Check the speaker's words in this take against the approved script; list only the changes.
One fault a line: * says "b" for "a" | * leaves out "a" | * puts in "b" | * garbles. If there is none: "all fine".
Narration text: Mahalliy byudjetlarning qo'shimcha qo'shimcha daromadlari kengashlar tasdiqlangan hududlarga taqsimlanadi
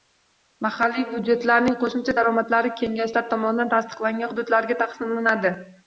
* leaves out "qo'shimcha"
* puts in "tomonidan"